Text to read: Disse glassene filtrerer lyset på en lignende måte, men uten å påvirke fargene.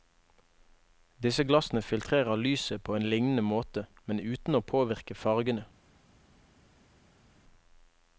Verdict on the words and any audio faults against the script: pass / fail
pass